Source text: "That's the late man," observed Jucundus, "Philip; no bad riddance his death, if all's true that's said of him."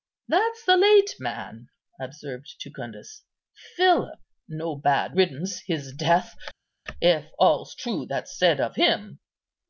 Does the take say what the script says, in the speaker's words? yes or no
yes